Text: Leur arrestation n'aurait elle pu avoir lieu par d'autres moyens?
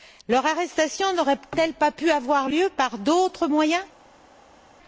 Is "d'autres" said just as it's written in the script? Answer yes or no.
yes